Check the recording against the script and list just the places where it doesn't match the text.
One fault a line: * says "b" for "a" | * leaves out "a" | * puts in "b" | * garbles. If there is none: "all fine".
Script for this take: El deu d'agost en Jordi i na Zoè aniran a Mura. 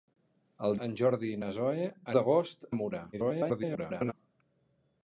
* leaves out "deu d'agost"
* says "d'agost" for "aniran"
* garbles